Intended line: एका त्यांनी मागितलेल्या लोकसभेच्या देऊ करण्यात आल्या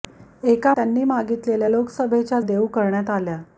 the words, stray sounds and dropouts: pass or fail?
pass